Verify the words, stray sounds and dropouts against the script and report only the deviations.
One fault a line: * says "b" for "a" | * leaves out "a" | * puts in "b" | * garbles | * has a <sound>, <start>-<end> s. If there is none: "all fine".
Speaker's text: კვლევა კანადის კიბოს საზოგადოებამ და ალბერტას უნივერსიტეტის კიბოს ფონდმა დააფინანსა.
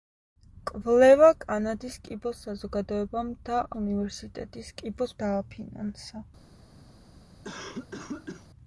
* leaves out "ალბერტას"
* leaves out "ფონდმა"
* has a cough, 7.4-8.5 s